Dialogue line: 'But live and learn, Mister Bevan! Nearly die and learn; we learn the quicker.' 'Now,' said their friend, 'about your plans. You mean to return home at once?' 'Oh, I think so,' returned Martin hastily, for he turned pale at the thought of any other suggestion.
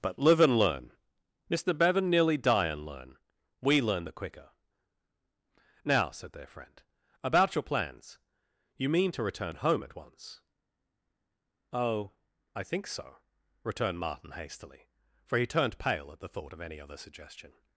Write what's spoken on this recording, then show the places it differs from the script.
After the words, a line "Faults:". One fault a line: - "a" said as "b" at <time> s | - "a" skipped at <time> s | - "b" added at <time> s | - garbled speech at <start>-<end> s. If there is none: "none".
'But live and learn, Mister Bevan! Nearly die and learn; we learn the quicker.' 'Now,' said their friend, 'about your plans. You mean to return home at once?' 'Oh, I think so,' returned Martin hastily, for he turned pale at the thought of any other suggestion.
Faults:
none